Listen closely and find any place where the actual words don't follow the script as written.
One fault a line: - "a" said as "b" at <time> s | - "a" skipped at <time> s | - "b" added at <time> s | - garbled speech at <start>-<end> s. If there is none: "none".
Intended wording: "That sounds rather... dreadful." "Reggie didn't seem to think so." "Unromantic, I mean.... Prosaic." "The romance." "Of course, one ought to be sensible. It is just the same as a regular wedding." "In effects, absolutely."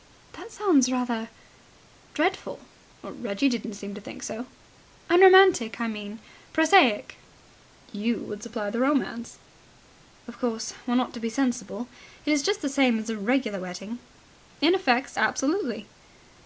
- "You would supply" added at 7.9 s